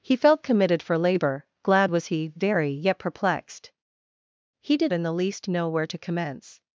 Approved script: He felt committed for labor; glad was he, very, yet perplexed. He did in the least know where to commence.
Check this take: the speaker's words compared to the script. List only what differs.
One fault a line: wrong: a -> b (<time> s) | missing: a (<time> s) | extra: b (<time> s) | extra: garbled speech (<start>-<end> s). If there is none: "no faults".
no faults